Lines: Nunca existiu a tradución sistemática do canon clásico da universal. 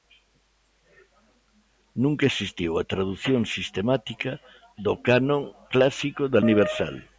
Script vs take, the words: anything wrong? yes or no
no